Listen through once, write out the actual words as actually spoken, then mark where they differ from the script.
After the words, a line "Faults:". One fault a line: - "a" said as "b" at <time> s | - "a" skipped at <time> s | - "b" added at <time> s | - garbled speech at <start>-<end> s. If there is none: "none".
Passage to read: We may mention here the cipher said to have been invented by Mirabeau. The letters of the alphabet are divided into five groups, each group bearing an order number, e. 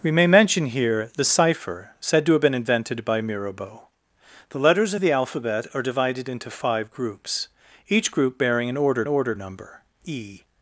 We may mention here the cipher said to have been invented by Mirabeau. The letters of the alphabet are divided into five groups, each group bearing an order order number, e.
Faults:
- "order" added at 9.1 s